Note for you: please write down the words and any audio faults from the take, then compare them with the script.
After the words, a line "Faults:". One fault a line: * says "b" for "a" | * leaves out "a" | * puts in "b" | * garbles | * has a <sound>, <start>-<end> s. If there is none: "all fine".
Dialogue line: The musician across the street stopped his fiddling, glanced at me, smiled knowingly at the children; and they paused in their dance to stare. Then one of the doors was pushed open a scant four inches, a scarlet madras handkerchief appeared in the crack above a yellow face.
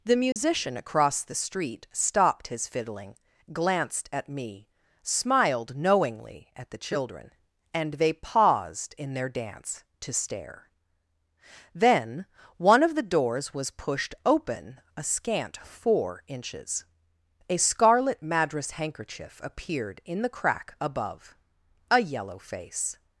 The musician across the street stopped his fiddling, glanced at me, smiled knowingly at the children; and they paused in their dance to stare. Then one of the doors was pushed open a scant four inches, a scarlet madras handkerchief appeared in the crack above a yellow face.
Faults:
* has a dropout, 0.3-0.4 s